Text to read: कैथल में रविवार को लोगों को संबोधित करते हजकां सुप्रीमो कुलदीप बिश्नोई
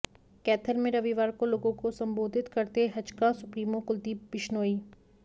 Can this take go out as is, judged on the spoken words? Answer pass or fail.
pass